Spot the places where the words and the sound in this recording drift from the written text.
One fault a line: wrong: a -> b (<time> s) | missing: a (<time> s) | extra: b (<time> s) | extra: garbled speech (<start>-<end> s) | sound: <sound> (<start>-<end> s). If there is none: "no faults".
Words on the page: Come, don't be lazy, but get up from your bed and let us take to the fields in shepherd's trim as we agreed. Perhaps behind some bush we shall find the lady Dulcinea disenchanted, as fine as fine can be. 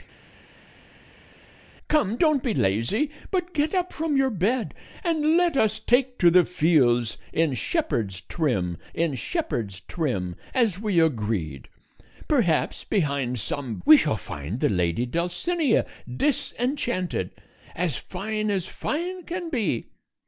extra: in shepherd's trim (8.9 s)
missing: bush (13.8 s)